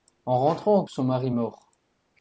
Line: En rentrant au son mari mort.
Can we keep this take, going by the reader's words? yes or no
yes